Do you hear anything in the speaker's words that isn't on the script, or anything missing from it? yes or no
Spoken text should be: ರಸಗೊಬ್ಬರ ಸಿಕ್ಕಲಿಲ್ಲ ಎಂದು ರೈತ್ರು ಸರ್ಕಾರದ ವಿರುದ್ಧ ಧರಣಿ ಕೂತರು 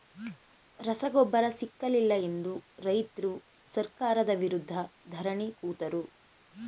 no